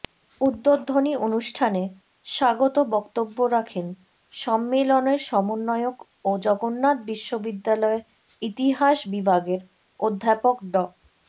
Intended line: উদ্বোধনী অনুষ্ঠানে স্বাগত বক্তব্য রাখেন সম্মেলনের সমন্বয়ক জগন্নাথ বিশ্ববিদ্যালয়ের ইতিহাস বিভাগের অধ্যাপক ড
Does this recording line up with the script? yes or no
no